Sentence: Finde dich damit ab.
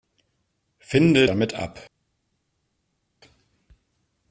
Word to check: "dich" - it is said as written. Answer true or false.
false